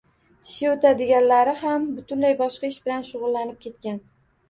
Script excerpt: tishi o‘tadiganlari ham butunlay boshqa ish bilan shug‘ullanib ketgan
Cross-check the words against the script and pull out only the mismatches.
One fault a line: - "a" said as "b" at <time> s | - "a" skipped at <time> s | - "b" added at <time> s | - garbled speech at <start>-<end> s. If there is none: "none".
none